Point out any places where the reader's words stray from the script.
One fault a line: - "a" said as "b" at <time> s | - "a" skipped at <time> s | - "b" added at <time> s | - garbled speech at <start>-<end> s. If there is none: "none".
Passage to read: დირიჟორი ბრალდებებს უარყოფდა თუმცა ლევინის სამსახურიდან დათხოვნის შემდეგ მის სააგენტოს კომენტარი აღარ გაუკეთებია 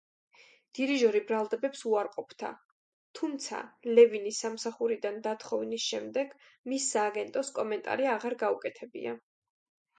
none